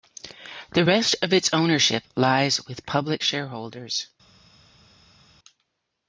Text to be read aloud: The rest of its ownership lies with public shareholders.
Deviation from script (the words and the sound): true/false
false